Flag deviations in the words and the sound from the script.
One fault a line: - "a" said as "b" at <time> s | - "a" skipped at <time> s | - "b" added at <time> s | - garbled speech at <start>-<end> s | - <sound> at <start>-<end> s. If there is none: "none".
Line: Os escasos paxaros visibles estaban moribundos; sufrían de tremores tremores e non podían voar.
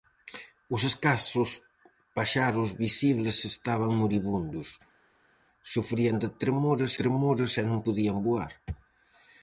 none